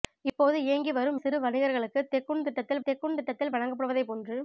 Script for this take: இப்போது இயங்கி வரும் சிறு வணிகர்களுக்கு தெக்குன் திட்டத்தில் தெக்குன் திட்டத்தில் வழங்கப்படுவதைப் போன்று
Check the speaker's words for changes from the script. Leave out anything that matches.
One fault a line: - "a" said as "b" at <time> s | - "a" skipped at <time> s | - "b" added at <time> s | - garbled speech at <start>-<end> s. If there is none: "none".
none